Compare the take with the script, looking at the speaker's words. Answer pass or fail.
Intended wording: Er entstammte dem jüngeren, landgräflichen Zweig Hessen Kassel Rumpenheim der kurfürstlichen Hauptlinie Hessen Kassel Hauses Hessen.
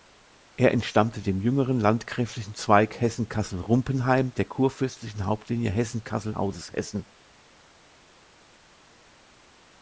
pass